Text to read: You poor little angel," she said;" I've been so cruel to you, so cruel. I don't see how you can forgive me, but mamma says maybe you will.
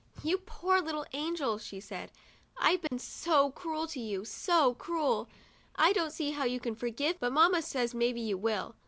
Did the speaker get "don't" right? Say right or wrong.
right